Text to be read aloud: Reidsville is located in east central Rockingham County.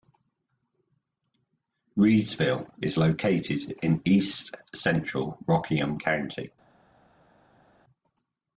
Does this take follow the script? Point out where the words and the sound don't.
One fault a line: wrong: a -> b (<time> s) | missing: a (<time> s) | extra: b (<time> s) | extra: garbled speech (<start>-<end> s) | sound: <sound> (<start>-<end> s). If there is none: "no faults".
no faults